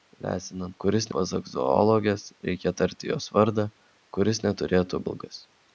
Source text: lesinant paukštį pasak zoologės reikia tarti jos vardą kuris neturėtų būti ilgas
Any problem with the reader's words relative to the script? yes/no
yes